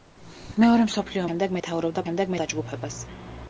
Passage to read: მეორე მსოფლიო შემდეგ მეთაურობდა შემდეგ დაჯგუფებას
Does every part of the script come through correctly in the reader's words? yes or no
yes